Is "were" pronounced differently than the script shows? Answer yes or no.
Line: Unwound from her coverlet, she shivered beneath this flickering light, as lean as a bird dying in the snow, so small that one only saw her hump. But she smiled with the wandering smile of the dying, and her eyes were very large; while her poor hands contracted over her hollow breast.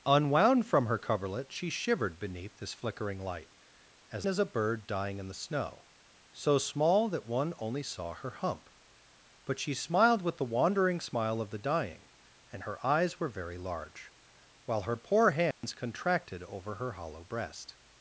no